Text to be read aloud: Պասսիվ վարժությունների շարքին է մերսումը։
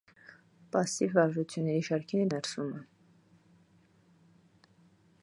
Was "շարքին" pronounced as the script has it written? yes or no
yes